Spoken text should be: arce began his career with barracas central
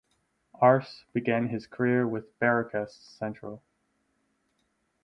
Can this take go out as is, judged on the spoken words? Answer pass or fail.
pass